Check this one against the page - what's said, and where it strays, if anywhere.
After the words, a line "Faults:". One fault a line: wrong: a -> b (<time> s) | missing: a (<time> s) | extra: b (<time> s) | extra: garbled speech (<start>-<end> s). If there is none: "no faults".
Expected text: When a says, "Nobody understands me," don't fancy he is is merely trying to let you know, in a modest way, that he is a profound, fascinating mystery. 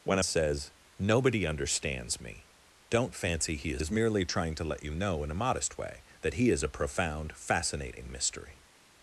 When a says, "Nobody understands me," don't fancy he is is merely trying to let you know, in a modest way, that he is a profound, fascinating mystery.
Faults:
no faults